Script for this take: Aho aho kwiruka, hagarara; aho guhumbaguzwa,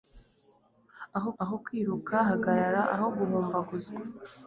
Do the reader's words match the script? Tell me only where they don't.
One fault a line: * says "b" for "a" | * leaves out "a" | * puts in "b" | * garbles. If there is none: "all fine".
all fine